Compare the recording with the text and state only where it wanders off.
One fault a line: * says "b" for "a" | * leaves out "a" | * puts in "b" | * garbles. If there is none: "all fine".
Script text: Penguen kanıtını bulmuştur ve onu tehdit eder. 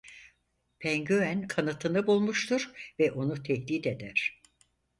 all fine